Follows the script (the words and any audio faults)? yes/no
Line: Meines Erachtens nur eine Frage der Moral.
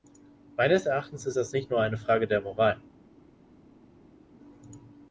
no